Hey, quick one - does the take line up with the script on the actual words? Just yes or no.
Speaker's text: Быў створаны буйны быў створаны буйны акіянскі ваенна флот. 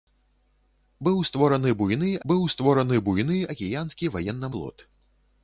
yes